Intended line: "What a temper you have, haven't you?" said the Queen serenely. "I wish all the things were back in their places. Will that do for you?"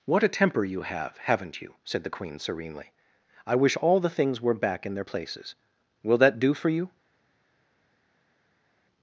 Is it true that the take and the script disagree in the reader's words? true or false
false